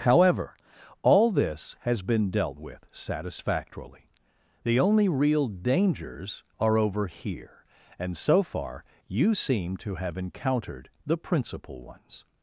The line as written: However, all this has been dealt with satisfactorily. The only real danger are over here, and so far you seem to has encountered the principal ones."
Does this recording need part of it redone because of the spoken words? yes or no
yes